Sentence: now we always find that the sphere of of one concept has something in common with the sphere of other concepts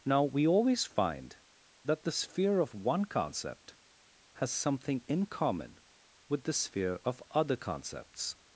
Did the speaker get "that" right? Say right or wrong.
right